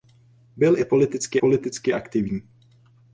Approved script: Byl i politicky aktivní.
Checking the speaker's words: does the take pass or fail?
fail